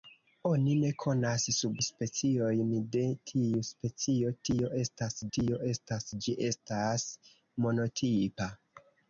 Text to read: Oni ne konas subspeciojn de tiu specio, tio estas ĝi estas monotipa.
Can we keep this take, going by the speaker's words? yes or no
no